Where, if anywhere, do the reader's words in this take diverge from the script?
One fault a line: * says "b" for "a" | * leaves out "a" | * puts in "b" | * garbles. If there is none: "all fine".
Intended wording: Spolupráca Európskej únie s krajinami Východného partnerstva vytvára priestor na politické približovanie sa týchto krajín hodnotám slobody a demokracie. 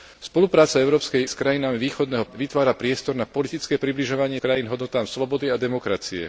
* leaves out "únie"
* leaves out "partnerstva"
* leaves out "sa týchto"